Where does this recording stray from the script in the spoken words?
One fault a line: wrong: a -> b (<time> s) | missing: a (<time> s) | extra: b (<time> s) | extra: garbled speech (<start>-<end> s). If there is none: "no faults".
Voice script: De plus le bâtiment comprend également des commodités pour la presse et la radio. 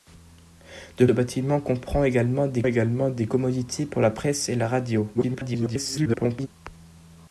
missing: plus (1.1 s)
extra: également des (2.6 s)
extra: garbled speech (5.1-6.5 s)